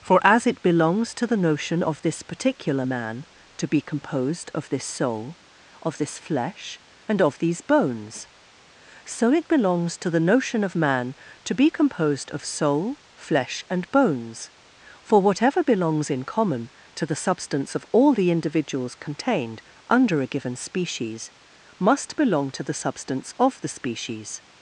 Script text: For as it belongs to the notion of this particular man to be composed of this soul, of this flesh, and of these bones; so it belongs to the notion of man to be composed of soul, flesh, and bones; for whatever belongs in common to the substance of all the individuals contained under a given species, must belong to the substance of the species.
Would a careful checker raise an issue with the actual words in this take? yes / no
no